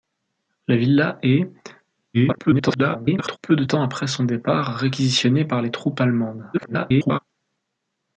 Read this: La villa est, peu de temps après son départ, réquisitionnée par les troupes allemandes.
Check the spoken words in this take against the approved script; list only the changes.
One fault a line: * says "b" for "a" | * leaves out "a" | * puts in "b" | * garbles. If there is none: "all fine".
* garbles
* garbles